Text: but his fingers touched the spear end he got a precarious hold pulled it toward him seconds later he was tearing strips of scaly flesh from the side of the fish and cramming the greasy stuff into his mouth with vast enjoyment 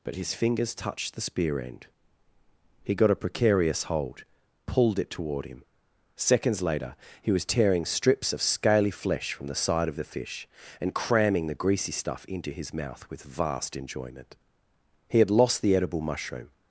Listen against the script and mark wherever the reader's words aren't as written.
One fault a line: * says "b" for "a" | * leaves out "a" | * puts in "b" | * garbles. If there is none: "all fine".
* puts in "he had lost the edible mushroom"